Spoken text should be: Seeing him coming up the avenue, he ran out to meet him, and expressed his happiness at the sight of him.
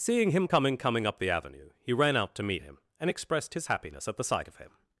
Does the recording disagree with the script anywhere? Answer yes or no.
yes